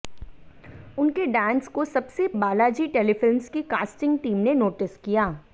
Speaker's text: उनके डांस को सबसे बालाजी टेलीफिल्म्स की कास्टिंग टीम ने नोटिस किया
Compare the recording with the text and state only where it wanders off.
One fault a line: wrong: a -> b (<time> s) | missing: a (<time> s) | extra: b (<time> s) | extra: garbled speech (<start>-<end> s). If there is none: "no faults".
no faults